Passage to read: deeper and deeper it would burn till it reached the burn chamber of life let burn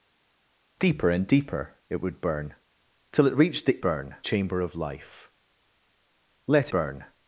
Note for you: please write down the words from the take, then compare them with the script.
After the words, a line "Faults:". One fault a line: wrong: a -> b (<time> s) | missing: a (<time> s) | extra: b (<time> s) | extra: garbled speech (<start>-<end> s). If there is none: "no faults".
deeper and deeper it would burn till it reached the burn chamber of life let burn
Faults:
no faults